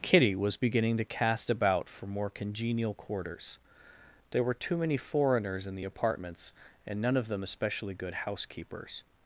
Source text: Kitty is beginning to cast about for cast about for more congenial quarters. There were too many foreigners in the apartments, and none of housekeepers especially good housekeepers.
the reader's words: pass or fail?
fail